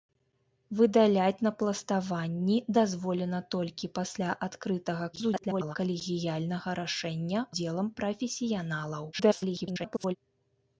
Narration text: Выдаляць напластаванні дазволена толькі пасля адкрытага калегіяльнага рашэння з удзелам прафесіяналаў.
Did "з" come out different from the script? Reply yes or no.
yes